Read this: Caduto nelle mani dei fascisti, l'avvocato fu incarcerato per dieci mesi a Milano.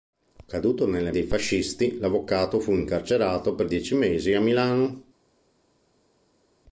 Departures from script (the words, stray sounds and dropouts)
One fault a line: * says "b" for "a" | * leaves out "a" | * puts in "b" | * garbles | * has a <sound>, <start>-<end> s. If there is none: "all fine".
* leaves out "mani"